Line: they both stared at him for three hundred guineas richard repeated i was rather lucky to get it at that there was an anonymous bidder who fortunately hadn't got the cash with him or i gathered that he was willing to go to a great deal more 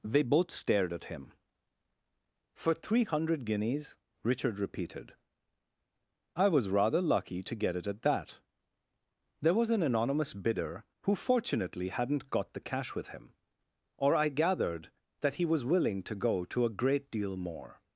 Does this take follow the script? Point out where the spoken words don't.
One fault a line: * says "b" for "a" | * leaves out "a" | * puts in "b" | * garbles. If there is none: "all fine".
all fine